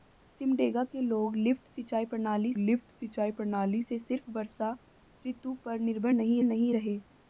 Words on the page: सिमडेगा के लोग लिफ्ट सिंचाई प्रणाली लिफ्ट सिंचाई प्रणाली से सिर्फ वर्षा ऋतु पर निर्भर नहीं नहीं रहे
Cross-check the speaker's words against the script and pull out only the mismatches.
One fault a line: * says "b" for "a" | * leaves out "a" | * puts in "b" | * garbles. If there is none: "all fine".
all fine